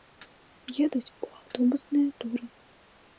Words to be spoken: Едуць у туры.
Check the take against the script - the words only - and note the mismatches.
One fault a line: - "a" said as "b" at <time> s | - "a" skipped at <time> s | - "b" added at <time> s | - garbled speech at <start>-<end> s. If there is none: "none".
- "аўтобусныя" added at 1.4 s